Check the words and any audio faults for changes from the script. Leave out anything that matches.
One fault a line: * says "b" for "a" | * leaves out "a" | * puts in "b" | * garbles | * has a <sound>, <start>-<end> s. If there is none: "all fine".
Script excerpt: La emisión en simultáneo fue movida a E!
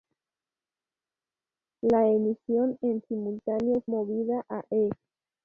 * leaves out "fue"